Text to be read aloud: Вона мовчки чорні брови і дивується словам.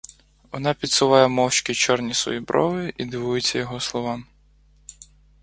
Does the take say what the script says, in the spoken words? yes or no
no